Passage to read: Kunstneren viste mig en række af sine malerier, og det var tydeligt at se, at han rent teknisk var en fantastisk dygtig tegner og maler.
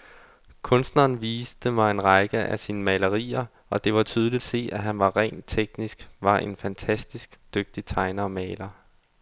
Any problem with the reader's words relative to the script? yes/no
yes